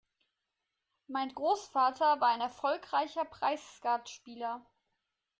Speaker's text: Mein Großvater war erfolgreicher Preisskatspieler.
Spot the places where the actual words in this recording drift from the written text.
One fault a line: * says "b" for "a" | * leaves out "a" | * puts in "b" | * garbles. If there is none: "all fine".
* puts in "ein"